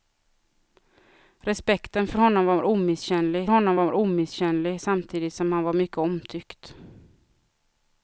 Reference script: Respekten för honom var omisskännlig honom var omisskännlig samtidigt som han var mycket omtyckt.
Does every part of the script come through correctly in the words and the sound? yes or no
yes